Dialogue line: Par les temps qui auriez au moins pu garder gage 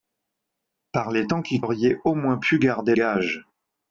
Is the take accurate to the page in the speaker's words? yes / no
yes